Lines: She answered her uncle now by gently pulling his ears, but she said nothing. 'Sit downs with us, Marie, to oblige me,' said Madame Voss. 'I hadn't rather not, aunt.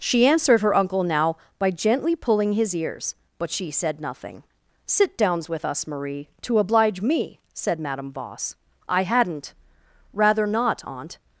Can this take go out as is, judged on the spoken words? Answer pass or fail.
pass